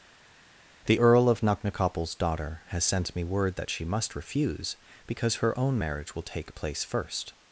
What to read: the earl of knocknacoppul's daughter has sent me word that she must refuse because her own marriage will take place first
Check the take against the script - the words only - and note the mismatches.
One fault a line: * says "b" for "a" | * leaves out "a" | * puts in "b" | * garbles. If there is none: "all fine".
all fine